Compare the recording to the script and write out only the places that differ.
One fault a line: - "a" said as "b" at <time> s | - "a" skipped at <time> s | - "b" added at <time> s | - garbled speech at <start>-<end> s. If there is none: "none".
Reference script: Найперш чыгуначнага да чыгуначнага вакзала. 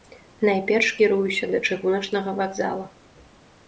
- "чыгуначнага" said as "кіруюся" at 1.0 s